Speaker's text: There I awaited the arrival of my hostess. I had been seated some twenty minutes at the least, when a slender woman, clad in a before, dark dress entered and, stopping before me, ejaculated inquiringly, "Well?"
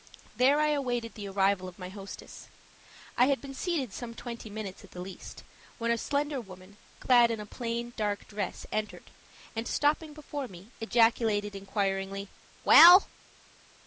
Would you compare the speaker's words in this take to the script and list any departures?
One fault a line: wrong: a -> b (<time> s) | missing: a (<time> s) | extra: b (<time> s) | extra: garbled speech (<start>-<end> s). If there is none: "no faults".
wrong: before -> plain (7.5 s)